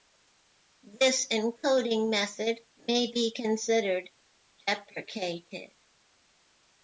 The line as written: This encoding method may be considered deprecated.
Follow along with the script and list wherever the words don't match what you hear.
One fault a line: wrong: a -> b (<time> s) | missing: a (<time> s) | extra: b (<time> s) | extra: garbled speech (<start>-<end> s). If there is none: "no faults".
no faults